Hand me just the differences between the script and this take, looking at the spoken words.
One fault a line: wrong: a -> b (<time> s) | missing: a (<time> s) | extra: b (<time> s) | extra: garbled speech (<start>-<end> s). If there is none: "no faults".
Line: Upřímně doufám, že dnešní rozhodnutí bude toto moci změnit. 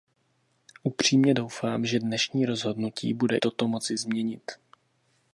no faults